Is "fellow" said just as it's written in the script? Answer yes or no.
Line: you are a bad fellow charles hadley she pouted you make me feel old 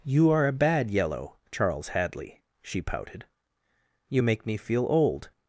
no